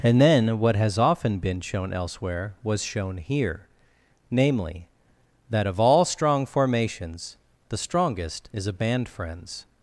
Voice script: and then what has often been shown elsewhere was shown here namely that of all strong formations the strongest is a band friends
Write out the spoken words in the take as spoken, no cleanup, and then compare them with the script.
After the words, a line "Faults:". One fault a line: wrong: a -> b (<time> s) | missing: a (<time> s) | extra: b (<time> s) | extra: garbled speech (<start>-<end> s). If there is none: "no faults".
and then what has often been shown elsewhere was shown here namely that of all strong formations the strongest is a band friends
Faults:
no faults